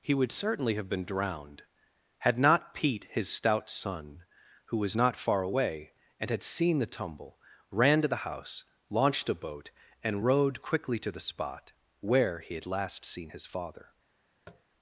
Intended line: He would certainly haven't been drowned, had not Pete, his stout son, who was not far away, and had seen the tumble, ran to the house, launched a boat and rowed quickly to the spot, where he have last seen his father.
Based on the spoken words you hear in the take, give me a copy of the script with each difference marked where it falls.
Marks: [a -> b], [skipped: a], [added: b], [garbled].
He would certainly [haven't -> have] been drowned, had not Pete, his stout son, who was not far away, and had seen the tumble, ran to the house, launched a boat and rowed quickly to the spot, where he [have -> had] last seen his father.